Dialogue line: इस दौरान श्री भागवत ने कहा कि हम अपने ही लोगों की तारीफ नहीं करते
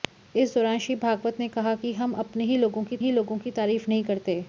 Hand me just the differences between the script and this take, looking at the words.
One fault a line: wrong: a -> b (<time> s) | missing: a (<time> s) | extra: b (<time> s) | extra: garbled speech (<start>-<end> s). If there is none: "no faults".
extra: ही लोगों की (3.0 s)